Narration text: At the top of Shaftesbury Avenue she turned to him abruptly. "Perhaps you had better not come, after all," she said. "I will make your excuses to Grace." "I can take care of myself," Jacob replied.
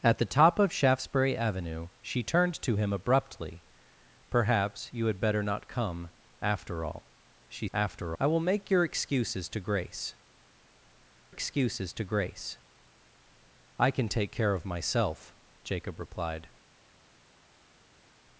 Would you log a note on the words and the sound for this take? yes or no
yes